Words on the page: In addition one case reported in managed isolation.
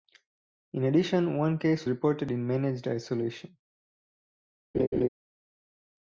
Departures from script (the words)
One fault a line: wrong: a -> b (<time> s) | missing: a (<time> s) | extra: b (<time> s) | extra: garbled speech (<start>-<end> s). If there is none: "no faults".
no faults